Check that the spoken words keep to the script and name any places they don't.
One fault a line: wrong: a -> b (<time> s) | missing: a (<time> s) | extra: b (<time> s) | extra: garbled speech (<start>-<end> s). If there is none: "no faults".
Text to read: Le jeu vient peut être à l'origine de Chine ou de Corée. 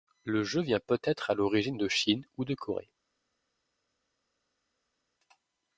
no faults